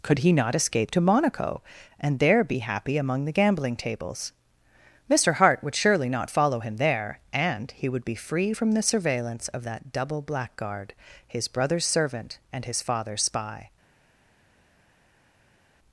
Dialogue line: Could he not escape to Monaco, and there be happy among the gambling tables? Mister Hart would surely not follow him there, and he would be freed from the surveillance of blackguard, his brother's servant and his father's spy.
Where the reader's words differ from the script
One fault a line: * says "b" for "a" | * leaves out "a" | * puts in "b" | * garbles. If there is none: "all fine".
* says "free" for "freed"
* puts in "that double"